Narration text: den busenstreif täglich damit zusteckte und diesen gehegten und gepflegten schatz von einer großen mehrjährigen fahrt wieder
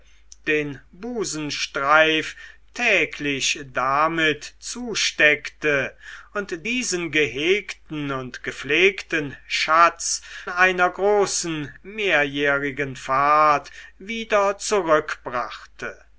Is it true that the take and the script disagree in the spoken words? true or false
true